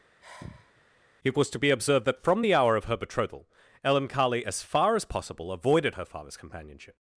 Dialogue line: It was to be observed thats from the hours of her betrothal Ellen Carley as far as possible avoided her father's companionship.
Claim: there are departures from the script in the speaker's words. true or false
true